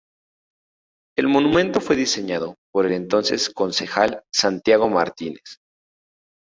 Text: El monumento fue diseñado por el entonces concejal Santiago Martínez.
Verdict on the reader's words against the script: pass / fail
fail